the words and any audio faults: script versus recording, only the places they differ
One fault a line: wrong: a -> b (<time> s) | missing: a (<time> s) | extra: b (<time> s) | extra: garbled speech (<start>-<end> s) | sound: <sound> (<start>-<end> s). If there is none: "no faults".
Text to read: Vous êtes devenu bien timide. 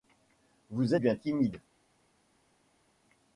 missing: êtes devenu (0.9 s)